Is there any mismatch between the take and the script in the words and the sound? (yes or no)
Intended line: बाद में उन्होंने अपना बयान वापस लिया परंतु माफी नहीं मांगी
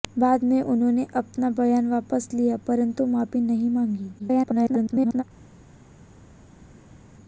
yes